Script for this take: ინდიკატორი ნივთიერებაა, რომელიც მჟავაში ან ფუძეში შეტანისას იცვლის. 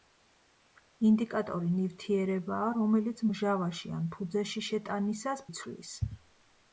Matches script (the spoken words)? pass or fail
pass